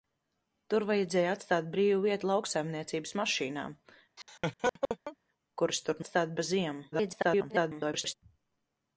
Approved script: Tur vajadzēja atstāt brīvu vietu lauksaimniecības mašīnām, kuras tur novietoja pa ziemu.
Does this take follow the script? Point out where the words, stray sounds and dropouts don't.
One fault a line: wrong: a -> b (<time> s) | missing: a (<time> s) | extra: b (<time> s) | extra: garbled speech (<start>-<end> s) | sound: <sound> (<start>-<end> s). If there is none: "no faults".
sound: laugh (4.2-5.2 s)
wrong: novietoja -> atstāt (6.0 s)
extra: garbled speech (6.9-8.1 s)